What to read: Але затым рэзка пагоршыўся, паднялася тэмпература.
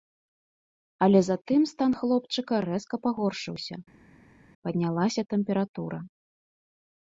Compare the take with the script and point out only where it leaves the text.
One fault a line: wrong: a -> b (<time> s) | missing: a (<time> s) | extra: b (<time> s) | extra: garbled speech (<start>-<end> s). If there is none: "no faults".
extra: стан хлопчыка (1.7 s)